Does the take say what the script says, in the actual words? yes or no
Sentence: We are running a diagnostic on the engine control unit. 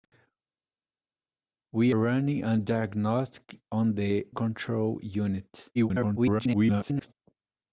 no